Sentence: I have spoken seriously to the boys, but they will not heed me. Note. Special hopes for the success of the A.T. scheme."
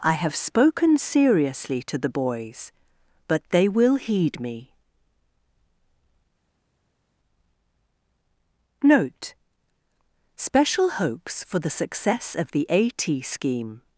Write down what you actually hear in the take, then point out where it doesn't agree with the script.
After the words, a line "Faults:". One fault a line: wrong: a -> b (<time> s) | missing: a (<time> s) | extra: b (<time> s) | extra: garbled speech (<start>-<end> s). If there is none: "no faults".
I have spoken seriously to the boys, but they will heed me. Note. Special hopes for the success of the A.T. scheme."
Faults:
missing: not (4.0 s)